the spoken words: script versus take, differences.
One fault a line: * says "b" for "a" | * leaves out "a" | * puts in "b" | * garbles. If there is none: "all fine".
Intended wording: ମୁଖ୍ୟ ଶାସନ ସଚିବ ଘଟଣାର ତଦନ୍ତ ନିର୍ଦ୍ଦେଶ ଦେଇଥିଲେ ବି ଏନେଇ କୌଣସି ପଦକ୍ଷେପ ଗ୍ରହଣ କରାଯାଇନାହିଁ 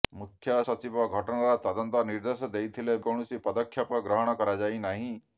* leaves out "ଶାସନ"
* leaves out "ବି ଏନେଇ"